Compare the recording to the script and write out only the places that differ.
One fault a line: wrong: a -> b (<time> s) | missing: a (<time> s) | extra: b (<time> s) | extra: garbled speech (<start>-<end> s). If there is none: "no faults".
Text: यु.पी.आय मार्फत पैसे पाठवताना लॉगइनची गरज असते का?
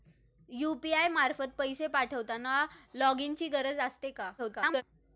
extra: garbled speech (4.4-4.8 s)